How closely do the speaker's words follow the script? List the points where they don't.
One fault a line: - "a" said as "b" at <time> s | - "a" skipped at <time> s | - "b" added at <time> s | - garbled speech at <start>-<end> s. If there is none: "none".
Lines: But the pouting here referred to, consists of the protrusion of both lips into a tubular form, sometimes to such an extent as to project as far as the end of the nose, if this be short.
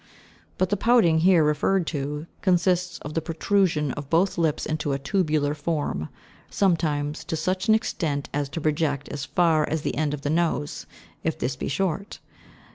none